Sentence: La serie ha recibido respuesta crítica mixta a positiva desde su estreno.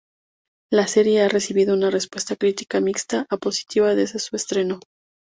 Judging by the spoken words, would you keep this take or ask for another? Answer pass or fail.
fail